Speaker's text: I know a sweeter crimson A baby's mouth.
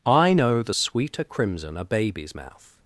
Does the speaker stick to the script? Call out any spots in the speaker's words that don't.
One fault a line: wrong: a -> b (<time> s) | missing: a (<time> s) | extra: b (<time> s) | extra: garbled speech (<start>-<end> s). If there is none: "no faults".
wrong: a -> the (0.6 s)